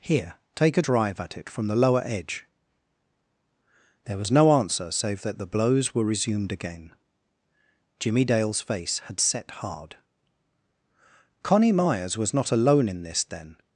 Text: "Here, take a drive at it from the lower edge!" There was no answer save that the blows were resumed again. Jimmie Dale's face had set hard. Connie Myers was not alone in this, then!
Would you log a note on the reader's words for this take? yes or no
no